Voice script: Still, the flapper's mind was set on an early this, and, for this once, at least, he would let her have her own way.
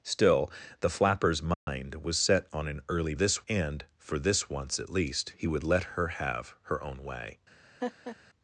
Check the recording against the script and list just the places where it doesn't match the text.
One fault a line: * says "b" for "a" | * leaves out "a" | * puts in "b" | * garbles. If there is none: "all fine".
all fine